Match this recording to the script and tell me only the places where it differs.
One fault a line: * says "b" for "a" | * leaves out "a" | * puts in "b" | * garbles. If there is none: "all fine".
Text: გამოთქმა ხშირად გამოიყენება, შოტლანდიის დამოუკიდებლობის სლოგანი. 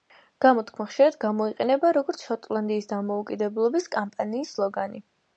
* puts in "როგორც"
* puts in "კამპანიის"